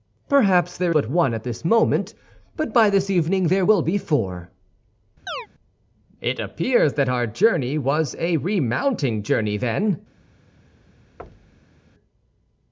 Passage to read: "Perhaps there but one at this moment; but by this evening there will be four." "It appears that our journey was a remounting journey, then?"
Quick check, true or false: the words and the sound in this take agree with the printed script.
false